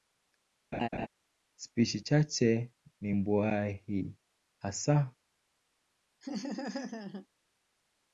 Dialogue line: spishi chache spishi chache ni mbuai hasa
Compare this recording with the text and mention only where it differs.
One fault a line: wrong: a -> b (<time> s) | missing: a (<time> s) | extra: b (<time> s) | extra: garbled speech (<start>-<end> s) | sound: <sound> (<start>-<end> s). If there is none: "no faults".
sound: laugh (0.7-1.1 s)
missing: spishi chache (2.7 s)
sound: laugh (6.2-7.3 s)